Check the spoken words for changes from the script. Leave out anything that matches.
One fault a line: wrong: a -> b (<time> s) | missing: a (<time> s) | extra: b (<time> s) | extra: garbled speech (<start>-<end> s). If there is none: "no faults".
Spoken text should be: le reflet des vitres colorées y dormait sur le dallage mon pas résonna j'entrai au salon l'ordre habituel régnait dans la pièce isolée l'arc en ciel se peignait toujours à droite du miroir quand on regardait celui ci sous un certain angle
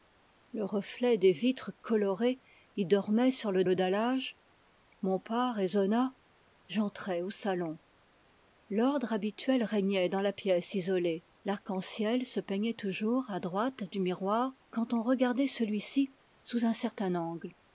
extra: le (3.6 s)